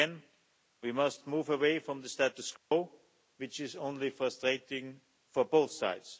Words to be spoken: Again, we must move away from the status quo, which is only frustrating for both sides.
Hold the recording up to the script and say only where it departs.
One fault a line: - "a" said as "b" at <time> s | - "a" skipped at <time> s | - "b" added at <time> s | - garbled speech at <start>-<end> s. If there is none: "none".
none